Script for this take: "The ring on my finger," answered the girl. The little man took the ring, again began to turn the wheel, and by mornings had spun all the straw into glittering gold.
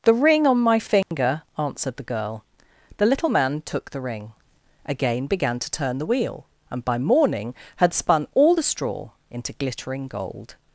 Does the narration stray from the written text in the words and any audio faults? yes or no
yes